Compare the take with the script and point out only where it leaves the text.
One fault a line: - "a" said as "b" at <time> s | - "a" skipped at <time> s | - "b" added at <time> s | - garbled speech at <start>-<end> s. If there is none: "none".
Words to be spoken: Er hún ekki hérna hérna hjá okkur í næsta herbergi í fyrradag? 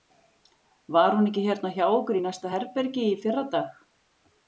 - "Er" said as "Var" at 0.9 s
- "hérna" skipped at 1.7 s